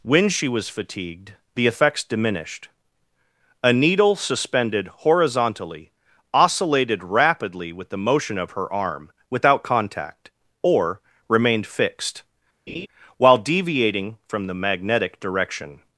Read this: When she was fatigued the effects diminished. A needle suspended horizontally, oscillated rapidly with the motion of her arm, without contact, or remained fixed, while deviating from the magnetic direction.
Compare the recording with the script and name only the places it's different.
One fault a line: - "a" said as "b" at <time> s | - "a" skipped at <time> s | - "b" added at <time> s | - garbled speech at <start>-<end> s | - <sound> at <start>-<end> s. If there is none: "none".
- laugh at 12.7-12.9 s